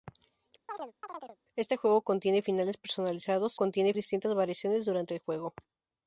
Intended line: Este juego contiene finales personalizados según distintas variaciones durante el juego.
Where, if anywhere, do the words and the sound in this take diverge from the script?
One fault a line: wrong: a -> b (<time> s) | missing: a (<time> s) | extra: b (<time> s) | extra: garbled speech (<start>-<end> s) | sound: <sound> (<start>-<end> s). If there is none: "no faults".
sound: chirp (0.7-1.4 s)
wrong: según -> contiene (3.5 s)